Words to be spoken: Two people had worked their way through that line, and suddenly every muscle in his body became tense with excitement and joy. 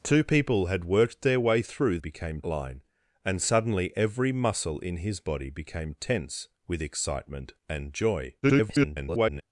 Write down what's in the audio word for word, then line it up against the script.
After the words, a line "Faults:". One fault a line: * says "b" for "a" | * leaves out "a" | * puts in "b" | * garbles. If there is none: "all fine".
Two people had worked their way through became line, and suddenly every muscle in his body became tense with excitement and joy. [garbled]
Faults:
* says "became" for "that"
* garbles